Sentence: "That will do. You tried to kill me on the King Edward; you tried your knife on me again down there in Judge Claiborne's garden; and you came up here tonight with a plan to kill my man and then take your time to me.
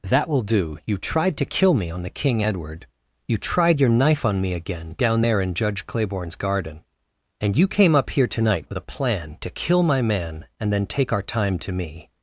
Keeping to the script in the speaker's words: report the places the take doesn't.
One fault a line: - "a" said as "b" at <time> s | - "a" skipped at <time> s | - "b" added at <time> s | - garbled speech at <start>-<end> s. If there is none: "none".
- "your" said as "our" at 11.1 s